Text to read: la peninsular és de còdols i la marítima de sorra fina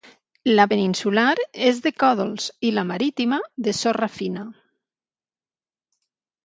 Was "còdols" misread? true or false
false